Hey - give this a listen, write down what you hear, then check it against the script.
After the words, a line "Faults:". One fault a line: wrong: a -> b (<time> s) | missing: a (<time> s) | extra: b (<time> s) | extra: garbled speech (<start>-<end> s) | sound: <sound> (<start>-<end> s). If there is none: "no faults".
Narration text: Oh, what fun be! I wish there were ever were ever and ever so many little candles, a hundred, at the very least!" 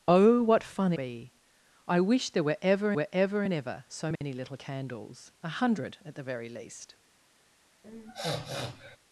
Oh, what fun be! I wish there were ever were ever and ever so many little candles, a hundred, at the very least!"
Faults:
sound: dropout (4.2-4.2 s)
sound: sniff (7.8-9.0 s)